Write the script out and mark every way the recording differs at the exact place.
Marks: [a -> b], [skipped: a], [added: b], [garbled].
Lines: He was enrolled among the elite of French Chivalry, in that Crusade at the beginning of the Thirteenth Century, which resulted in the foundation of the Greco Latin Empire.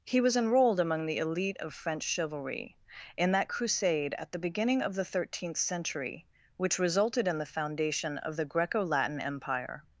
He was enrolled among the elite of French Chivalry, in that Crusade at the beginning of the Thirteenth Century, which resulted in the foundation of the Greco Latin Empire.